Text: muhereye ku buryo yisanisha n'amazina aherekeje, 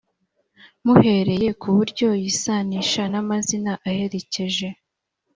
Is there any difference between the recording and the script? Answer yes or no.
no